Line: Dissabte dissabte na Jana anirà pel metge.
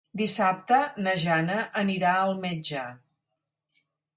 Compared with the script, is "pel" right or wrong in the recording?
wrong